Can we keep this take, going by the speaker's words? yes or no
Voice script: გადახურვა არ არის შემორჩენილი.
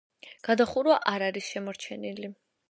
yes